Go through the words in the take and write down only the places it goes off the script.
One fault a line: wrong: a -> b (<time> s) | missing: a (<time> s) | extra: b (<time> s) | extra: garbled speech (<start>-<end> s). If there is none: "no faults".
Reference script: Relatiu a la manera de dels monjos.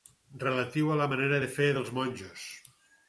extra: fer (1.5 s)